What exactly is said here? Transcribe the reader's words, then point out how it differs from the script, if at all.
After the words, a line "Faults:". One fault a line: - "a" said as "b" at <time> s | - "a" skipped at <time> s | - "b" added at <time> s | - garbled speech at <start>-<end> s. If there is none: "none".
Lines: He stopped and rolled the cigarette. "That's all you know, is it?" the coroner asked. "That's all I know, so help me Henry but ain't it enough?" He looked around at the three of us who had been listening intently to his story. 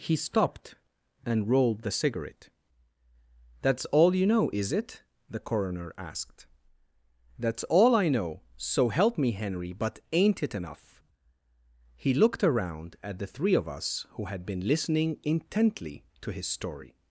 He stopped and rolled the cigarette. "That's all you know, is it?" the coroner asked. "That's all I know, so help me Henry but ain't it enough?" He looked around at the three of us who had been listening intently to his story.
Faults:
none